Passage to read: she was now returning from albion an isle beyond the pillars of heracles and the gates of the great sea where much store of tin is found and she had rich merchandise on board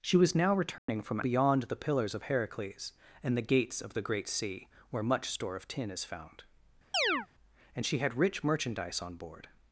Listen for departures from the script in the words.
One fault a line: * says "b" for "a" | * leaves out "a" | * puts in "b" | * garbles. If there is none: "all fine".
* leaves out "albion an isle"